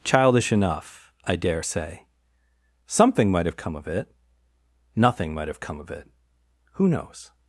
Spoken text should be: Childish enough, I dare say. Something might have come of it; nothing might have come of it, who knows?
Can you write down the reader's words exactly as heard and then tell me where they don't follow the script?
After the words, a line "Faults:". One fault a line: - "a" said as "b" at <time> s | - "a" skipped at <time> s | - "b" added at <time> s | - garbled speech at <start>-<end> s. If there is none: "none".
Childish enough, I dare say. Something might have come of it; nothing might have come of it, who knows?
Faults:
none